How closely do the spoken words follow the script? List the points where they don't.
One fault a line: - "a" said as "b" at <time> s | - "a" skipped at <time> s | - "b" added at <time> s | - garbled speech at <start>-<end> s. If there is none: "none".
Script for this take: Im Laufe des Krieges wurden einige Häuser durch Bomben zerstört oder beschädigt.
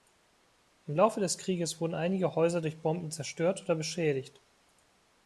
none